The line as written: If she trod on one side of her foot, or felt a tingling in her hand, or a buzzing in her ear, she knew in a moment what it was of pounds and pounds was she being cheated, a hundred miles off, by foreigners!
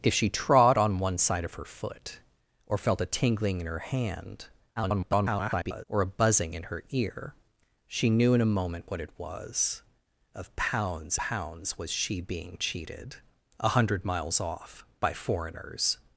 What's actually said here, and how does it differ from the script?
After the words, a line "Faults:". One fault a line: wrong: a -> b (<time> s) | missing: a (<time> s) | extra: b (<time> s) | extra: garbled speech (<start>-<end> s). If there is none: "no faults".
If she trod on one side of her foot, or felt a tingling in her hand, [garbled] or a buzzing in her ear, she knew in a moment what it was of pounds pounds was she being cheated, a hundred miles off, by foreigners!
Faults:
extra: garbled speech (4.8-5.8 s)
missing: and (11.2 s)